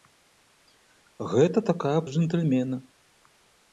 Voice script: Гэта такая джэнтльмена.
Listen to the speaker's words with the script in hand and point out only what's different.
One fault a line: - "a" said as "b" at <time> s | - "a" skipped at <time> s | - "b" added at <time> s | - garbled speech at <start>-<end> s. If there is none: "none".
none